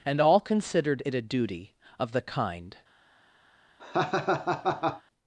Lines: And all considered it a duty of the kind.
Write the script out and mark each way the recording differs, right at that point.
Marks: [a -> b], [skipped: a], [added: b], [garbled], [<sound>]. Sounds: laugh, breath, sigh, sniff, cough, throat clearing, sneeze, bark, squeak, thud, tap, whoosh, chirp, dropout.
And all considered it a duty of the kind. [laugh]